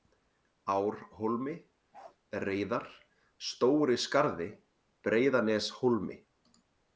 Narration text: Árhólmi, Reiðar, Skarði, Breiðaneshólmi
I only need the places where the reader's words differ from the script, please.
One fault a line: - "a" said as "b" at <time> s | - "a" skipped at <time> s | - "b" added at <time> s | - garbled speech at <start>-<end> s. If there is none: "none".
- "Stóri" added at 3.5 s